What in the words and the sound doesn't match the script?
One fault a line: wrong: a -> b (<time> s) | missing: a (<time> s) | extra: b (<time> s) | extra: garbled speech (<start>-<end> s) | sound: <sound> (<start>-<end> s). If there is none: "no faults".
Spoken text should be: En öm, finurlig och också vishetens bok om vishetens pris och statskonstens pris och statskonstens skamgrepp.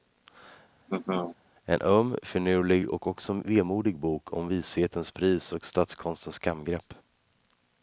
sound: laugh (0.9-1.4 s)
wrong: vishetens -> vemodig (3.3 s)
missing: pris och statskonstens (6.4 s)